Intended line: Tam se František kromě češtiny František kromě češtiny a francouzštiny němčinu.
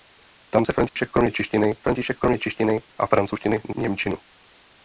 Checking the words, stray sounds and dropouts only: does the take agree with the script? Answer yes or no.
no